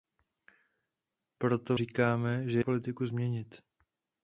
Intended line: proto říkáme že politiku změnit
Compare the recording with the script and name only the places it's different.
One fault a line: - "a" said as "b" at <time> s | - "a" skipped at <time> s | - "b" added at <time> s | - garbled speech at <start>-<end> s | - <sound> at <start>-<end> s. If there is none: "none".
none